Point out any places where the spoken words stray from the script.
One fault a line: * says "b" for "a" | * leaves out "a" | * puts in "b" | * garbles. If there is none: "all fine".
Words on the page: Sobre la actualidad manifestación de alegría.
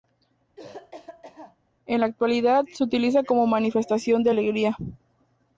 * says "En" for "Sobre"
* puts in "se utiliza como"